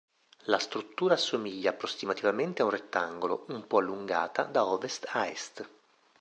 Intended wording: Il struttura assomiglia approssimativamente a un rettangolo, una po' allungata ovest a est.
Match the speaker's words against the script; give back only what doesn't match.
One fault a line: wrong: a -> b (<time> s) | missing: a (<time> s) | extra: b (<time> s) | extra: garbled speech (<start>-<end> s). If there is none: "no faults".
wrong: Il -> La (0.5 s)
wrong: una -> un (3.5 s)
extra: da (4.5 s)